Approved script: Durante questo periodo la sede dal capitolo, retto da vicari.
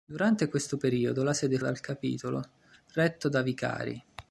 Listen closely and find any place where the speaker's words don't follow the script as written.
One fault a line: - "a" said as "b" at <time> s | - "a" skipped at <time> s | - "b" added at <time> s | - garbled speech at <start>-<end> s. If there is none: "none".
none